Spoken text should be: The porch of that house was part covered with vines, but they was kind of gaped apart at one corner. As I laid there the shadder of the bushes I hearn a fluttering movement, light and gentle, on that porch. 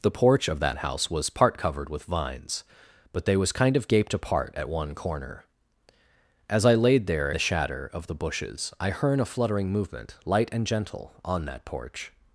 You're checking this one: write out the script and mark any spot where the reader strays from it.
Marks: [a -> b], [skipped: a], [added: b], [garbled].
The porch of that house was part covered with vines, but they was kind of gaped apart at one corner. As I laid there the shadder of the bushes I hearn a fluttering movement, light and gentle, on that porch.